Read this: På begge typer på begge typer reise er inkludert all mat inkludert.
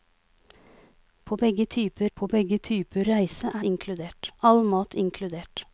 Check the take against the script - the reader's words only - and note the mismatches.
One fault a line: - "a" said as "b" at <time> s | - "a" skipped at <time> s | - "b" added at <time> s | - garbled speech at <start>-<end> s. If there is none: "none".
none